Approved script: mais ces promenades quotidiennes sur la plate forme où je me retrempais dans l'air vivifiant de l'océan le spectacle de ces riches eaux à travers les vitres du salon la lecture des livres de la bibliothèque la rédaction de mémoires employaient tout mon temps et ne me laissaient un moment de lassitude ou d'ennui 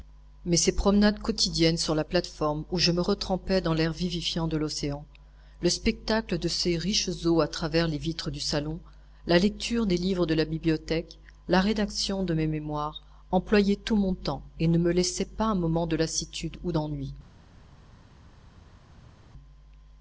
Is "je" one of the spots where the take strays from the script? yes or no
no